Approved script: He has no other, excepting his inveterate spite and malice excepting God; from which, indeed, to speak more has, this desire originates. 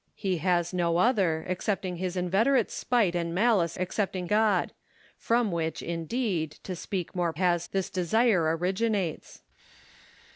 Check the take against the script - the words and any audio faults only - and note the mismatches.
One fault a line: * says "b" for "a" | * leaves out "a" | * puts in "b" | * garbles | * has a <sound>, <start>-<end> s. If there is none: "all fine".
all fine